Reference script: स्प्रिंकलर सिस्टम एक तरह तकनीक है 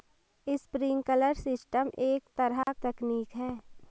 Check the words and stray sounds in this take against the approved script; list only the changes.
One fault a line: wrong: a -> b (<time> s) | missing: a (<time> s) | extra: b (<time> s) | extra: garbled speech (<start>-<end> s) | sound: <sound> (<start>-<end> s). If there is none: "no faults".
sound: dropout (2.6-2.7 s)